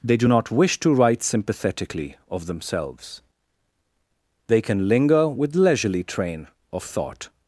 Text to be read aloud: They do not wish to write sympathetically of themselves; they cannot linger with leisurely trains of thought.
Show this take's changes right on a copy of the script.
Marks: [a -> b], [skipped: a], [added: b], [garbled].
They do not wish to write sympathetically of themselves; they [cannot -> can] linger with leisurely [trains -> train] of thought.